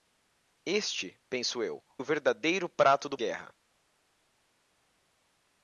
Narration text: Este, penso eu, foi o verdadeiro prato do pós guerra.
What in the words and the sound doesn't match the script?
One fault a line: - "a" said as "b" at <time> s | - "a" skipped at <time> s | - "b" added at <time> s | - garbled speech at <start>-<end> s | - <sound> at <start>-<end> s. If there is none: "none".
- "foi" skipped at 1.8 s
- "pós" skipped at 3.2 s